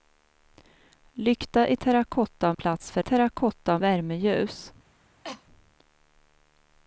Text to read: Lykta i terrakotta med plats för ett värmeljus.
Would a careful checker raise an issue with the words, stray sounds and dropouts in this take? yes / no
yes